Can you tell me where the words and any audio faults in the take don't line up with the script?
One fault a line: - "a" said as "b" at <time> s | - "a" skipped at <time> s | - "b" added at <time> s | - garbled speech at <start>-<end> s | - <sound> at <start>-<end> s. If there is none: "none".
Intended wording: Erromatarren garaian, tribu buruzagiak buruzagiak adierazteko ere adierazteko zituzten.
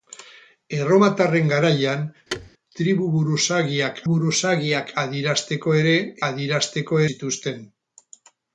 - thud at 2.3-2.5 s